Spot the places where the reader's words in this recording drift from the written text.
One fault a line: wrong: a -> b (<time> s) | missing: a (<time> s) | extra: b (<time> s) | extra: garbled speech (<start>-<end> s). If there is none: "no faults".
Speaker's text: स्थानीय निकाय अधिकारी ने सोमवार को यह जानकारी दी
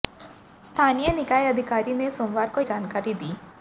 missing: यह (2.6 s)